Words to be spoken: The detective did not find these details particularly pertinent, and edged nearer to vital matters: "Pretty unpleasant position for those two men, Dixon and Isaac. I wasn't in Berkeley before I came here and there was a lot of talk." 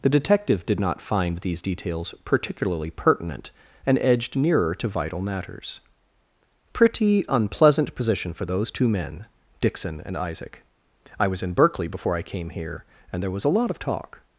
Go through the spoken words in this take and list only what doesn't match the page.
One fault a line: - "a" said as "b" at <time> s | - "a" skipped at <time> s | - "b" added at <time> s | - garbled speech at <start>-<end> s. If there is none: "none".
- "wasn't" said as "was" at 11.3 s